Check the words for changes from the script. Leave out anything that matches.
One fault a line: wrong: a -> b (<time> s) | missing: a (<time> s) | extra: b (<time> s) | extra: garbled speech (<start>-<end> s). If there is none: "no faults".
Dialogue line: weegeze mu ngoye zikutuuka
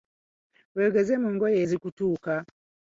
no faults